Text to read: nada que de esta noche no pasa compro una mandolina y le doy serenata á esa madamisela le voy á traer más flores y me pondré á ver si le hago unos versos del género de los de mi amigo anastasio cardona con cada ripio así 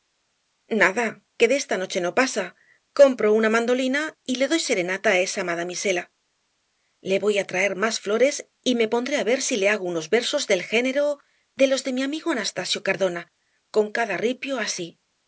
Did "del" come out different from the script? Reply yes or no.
no